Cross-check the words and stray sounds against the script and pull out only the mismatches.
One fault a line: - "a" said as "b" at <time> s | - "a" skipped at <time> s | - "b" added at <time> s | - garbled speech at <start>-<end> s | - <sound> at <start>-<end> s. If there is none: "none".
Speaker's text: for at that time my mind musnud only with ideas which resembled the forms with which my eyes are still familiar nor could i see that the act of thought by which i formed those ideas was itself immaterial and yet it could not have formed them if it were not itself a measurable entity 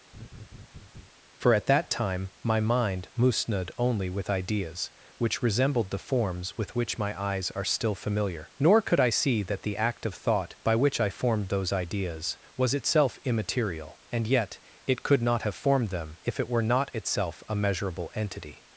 - laugh at 0.1-1.1 s